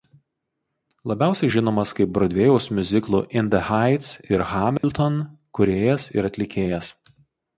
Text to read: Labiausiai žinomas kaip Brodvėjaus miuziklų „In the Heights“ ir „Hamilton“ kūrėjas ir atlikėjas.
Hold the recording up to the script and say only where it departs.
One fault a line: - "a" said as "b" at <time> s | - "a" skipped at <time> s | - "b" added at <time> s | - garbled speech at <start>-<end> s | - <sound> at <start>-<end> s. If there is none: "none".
- dropout at 4.8-4.8 s